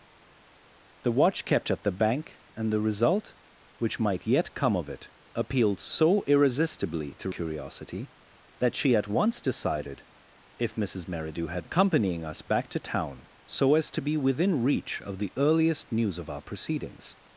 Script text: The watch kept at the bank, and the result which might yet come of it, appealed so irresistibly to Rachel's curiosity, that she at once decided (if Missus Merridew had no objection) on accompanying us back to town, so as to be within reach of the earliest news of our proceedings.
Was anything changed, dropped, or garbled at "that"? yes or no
no